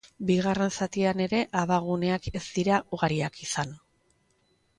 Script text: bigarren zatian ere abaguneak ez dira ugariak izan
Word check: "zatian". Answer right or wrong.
right